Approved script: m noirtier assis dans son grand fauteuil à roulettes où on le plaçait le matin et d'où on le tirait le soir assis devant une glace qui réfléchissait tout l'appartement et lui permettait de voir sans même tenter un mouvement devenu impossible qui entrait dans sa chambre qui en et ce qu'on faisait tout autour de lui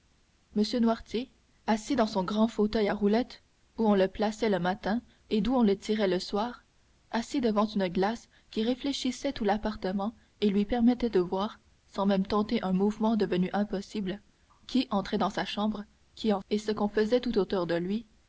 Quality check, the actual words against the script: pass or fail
pass